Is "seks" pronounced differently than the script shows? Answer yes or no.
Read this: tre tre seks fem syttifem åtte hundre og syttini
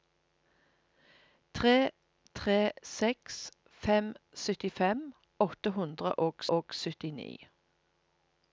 no